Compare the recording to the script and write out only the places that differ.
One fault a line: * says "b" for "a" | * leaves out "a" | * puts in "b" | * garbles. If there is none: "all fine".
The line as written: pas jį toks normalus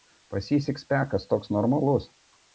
* puts in "sikspekas"